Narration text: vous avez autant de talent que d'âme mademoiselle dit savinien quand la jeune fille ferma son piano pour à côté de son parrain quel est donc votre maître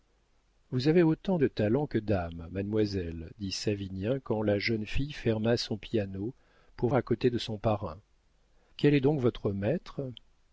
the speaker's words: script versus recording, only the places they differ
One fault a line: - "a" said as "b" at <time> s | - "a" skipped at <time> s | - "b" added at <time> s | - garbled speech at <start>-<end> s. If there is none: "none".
none